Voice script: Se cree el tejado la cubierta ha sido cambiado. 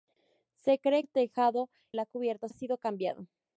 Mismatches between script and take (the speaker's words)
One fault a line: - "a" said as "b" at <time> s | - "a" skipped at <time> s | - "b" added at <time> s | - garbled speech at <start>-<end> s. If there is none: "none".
none